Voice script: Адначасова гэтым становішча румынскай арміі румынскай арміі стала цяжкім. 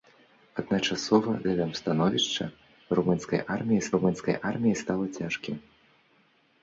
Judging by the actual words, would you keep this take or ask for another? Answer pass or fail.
pass